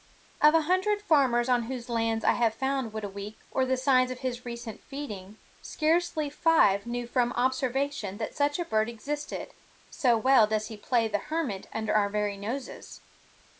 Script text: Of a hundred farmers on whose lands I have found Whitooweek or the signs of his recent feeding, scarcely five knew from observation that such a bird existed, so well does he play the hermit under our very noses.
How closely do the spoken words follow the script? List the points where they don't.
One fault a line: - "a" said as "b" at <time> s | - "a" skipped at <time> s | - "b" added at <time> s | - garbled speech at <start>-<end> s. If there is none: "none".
none